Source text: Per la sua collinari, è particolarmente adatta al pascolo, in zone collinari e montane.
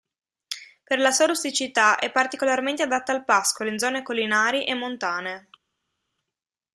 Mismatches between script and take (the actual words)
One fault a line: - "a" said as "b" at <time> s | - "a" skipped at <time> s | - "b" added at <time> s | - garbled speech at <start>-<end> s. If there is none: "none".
- "collinari" said as "rusticità" at 1.3 s